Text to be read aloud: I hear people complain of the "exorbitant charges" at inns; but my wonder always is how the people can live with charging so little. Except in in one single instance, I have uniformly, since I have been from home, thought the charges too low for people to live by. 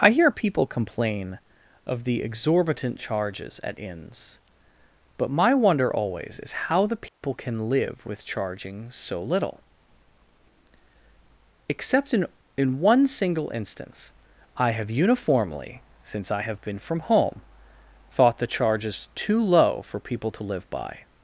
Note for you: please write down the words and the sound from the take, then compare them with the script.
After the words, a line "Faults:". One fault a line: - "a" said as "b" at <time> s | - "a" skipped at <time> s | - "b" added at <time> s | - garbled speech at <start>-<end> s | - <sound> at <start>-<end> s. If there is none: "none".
I hear people complain of the "exorbitant charges" at inns; but my wonder always is how the people can live with charging so little. Except in in one single instance, I have uniformly, since I have been from home, thought the charges too low for people to live by.
Faults:
- dropout at 7.1-7.2 s